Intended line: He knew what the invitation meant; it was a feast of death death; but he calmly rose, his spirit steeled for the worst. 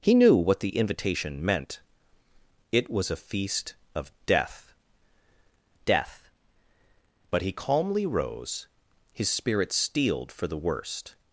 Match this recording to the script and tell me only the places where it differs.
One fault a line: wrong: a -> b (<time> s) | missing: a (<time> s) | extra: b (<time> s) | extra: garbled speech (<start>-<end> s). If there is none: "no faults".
no faults